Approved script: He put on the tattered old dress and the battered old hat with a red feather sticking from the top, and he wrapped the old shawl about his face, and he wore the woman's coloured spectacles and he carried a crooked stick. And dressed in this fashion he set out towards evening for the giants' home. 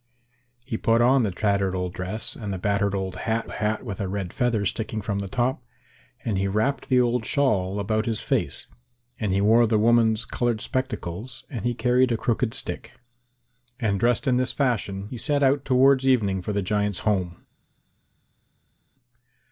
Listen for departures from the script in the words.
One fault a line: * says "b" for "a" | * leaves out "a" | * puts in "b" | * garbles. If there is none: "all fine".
* puts in "hat"